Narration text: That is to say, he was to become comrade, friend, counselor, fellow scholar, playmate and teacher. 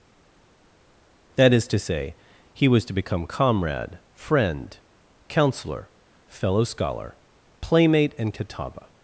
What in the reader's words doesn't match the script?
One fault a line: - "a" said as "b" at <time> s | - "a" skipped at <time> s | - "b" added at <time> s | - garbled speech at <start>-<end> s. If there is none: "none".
- "teacher" said as "catawba" at 8.3 s